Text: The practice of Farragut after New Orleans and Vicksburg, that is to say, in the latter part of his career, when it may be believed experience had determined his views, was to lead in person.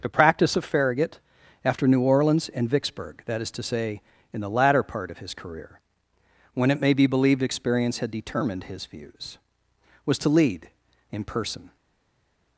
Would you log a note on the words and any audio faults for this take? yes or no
no